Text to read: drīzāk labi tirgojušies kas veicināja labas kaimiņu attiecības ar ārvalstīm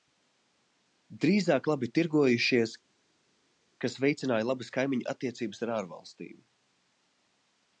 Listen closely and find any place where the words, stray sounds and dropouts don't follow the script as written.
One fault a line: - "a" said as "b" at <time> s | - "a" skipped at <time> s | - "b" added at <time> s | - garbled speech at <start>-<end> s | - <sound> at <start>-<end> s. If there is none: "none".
none